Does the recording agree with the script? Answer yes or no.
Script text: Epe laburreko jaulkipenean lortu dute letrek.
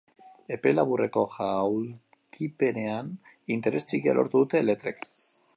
no